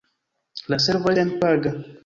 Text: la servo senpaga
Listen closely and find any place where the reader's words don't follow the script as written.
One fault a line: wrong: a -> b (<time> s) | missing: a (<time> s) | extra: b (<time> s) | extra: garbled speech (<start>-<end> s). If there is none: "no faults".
no faults